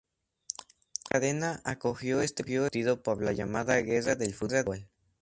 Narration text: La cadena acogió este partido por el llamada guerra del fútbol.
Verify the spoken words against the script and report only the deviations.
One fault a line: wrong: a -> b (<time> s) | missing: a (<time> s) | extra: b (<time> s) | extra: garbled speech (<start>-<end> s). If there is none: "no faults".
wrong: el -> la (3.2 s)